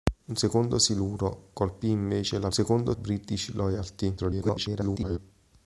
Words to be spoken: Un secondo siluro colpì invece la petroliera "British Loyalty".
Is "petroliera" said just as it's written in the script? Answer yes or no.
no